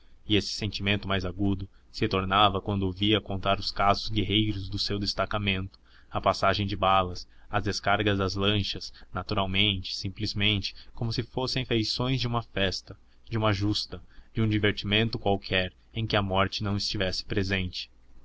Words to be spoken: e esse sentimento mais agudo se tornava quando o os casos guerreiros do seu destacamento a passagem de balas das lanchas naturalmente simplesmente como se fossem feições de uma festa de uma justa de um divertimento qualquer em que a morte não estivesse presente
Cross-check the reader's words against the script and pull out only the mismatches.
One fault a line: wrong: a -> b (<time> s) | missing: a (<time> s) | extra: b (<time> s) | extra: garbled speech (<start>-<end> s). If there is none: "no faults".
extra: via contar (2.9 s)
extra: as descargas (7.5 s)